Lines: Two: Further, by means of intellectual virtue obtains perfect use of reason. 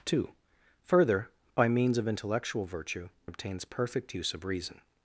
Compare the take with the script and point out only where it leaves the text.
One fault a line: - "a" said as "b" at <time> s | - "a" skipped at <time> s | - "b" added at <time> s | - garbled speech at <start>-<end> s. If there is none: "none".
none